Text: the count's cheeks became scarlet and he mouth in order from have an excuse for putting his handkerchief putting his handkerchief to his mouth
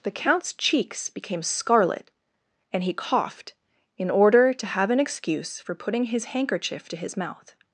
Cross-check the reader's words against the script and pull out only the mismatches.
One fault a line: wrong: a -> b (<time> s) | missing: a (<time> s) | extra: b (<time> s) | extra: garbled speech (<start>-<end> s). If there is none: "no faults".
wrong: mouth -> coughed (2.9 s)
wrong: from -> to (4.5 s)
missing: putting his handkerchief (6.9 s)